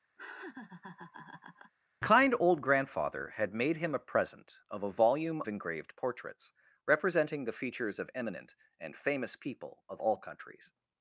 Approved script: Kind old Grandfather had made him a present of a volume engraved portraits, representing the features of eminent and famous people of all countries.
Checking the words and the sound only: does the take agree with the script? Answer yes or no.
no